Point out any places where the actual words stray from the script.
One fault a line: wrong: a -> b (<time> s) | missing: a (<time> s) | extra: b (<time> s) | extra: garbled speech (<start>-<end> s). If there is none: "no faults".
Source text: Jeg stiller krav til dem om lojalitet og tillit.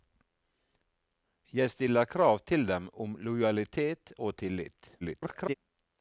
extra: garbled speech (5.0-5.5 s)